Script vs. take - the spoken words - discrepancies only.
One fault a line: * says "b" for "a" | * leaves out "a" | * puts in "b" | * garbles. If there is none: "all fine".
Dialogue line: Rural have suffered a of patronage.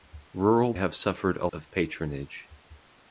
all fine